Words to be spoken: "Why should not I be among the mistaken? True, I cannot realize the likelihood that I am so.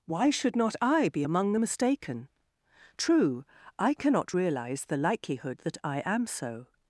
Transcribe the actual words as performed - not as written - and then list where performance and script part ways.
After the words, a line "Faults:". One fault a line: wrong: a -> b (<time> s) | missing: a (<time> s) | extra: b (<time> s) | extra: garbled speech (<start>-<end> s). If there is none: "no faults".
"Why should not I be among the mistaken? True, I cannot realize the likelihood that I am so.
Faults:
no faults